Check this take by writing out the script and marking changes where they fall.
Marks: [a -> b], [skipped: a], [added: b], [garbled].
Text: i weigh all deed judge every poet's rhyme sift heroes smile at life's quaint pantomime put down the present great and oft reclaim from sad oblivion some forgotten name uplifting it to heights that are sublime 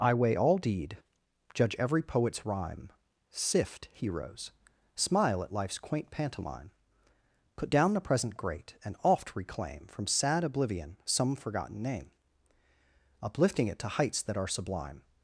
i weigh all deed judge every poet's rhyme sift heroes smile at life's quaint pantomime put down the present great and oft reclaim from sad oblivion some forgotten name uplifting it to heights that are sublime